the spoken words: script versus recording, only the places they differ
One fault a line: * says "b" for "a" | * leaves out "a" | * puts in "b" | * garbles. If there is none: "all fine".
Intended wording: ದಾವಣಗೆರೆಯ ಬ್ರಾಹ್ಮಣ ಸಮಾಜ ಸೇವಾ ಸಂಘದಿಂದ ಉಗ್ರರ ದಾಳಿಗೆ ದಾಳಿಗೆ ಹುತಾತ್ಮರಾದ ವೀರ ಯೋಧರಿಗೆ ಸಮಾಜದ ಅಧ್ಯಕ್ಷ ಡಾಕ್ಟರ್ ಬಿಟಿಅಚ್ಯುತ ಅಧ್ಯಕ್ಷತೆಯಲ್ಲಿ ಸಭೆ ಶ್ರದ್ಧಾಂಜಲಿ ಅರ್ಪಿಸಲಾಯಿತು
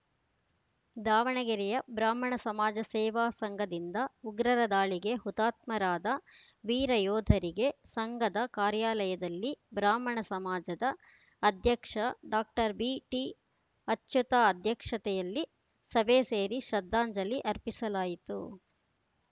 * leaves out "ದಾಳಿಗೆ"
* puts in "ಸಂಘದ ಕಾರ್ಯಾಲಯದಲ್ಲಿ ಬ್ರಾಹ್ಮಣ"
* puts in "ಸೇರಿ"